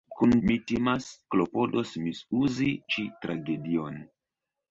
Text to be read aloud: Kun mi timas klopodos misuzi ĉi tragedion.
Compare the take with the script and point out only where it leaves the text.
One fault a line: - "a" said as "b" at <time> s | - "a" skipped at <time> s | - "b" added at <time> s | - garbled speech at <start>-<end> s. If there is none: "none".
none